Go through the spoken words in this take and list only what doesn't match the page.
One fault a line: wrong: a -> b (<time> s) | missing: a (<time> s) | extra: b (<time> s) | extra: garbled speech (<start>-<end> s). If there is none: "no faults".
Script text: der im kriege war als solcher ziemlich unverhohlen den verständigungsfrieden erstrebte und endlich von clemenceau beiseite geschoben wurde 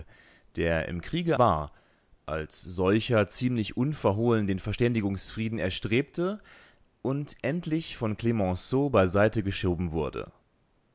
no faults